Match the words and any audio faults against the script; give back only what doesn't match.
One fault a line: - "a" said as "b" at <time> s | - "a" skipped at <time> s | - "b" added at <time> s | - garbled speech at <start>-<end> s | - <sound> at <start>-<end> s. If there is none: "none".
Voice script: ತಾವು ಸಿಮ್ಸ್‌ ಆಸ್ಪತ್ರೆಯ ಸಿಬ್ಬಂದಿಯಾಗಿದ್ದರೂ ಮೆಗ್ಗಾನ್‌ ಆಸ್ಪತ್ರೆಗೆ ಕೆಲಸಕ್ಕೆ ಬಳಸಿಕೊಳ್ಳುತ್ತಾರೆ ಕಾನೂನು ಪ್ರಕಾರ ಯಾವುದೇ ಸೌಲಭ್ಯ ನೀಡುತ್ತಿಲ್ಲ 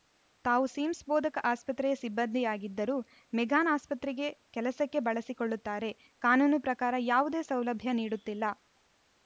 - "ಬೋಧಕ" added at 1.1 s